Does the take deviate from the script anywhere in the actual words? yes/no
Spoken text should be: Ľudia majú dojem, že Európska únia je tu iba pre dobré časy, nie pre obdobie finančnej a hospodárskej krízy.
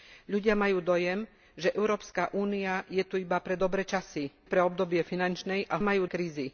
yes